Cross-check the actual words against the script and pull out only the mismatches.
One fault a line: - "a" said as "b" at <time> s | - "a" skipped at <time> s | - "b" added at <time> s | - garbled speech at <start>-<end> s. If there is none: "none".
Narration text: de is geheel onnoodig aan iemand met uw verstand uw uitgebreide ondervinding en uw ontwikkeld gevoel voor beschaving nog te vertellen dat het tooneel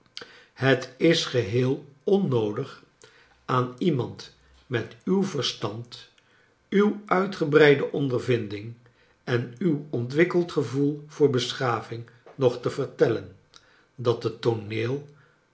- "de" said as "het" at 0.5 s